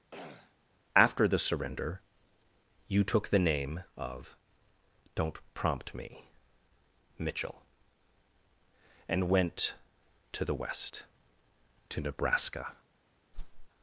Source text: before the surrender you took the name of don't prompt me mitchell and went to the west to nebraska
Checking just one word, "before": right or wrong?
wrong